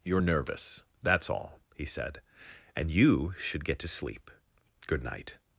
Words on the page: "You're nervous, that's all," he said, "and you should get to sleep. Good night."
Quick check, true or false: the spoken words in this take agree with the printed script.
true